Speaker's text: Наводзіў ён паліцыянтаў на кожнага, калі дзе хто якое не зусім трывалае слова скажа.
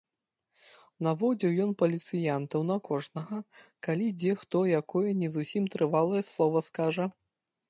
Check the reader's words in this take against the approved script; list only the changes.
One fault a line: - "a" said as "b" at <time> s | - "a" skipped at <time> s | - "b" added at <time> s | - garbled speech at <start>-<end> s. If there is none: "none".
none